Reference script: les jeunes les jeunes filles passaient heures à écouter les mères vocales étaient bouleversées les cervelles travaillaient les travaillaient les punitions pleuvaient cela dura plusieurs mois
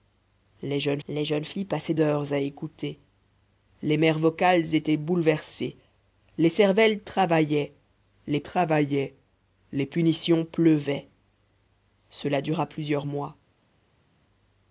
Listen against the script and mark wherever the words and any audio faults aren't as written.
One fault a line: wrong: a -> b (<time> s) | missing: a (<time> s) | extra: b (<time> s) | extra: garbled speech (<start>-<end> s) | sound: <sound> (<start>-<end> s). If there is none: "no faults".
no faults